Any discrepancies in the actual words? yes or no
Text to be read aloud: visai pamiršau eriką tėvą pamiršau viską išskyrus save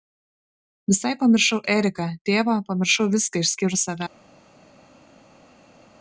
no